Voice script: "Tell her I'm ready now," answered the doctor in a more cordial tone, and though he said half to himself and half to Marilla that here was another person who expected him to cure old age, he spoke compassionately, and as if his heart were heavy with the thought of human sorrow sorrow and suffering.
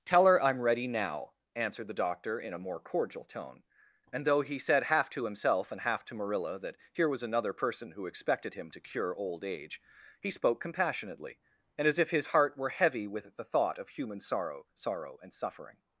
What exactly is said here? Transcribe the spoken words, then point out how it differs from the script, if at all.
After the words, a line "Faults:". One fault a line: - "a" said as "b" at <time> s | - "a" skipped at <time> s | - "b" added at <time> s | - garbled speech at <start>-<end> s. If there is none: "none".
"Tell her I'm ready now," answered the doctor in a more cordial tone, and though he said half to himself and half to Marilla that here was another person who expected him to cure old age, he spoke compassionately, and as if his heart were heavy with the thought of human sorrow sorrow and suffering.
Faults:
none